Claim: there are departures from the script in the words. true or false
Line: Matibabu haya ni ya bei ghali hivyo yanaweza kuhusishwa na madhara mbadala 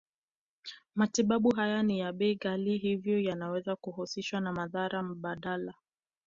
false